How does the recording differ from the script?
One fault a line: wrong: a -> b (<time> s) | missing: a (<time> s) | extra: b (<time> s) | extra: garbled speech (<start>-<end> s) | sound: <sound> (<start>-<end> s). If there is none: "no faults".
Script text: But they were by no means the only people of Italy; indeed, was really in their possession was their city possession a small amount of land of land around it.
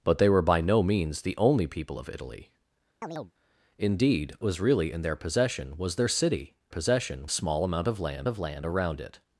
sound: chirp (3.0-3.3 s)